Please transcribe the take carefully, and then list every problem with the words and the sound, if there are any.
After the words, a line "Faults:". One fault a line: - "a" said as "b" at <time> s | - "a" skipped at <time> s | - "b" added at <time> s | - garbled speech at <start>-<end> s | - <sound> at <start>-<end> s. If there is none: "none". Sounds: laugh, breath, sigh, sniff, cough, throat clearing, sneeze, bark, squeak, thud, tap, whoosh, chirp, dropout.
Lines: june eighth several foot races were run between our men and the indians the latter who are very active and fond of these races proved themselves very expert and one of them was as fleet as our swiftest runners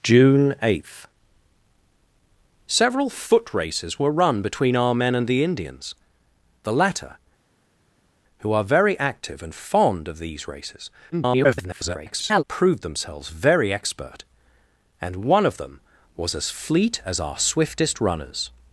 june eighth several foot races were run between our men and the indians the latter who are very active and fond of these races [garbled] proved themselves very expert and one of them was as fleet as our swiftest runners
Faults:
- garbled speech at 11.1-12.4 s